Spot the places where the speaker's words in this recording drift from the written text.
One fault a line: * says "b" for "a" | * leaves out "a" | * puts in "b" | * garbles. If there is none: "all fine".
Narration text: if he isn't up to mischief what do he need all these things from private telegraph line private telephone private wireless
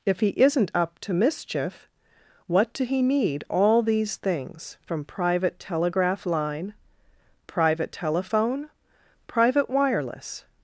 all fine